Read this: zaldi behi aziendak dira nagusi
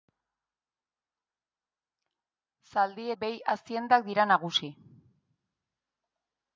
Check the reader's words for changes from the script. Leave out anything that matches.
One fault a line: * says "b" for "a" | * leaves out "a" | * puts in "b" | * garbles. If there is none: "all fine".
all fine